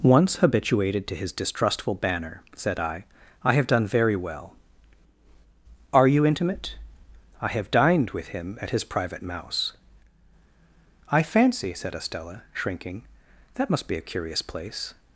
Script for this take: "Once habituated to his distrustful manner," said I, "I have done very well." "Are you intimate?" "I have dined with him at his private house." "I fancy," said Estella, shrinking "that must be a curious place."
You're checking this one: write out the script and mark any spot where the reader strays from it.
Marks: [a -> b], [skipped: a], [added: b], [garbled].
"Once habituated to his distrustful [manner," -> banner] said I, "I have done very well." "Are you intimate?" "I have dined with him at his private [house." -> mouse] "I fancy," said Estella, shrinking "that must be a curious place."